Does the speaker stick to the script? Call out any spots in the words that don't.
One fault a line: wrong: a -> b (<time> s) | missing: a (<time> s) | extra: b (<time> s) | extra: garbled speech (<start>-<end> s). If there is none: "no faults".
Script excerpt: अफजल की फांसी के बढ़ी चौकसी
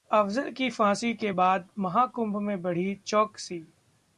extra: बाद महाकुंभ में (1.3 s)